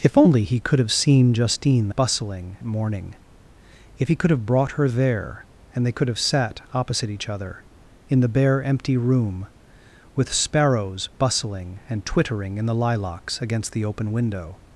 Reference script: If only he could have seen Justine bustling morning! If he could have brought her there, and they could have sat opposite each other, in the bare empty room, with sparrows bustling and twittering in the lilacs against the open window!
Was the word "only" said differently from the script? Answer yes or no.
no